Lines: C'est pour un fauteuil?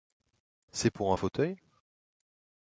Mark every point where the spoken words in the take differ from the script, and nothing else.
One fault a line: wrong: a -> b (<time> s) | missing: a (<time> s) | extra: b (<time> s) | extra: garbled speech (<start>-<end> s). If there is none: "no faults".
no faults